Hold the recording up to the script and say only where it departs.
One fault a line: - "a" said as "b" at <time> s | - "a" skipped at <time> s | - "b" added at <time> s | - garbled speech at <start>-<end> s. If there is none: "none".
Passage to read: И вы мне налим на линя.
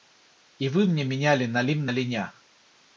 - "меняли" added at 1.0 s